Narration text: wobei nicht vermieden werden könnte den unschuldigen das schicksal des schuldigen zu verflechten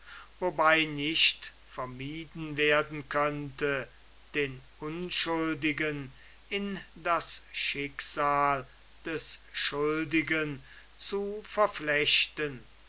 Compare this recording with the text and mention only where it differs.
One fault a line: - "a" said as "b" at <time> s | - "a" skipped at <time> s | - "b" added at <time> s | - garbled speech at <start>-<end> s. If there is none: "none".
- "in" added at 6.5 s